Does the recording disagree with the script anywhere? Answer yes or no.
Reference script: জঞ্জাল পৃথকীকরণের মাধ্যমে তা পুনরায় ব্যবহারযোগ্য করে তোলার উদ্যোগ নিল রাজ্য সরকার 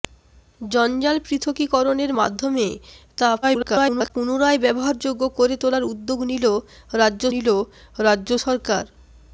yes